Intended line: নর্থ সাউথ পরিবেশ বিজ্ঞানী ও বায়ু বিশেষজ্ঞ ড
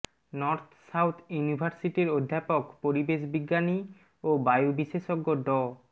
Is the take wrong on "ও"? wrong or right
right